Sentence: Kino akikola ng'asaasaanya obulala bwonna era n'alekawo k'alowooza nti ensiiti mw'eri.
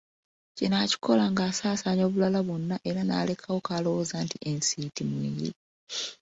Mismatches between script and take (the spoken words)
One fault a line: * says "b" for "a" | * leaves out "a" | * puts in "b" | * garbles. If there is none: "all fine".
all fine